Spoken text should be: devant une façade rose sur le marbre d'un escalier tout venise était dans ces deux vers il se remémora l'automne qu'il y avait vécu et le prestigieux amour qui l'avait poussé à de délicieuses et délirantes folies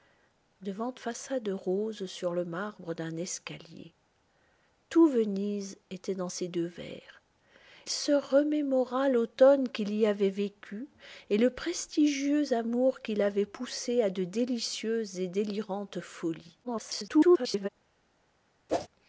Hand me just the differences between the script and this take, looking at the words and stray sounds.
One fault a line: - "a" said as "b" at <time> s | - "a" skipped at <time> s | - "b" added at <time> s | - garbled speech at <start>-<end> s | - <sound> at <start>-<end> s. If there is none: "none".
- "une" skipped at 0.9 s
- "il" skipped at 7.2 s
- garbled speech at 16.6-17.7 s
- whoosh at 18.7-18.9 s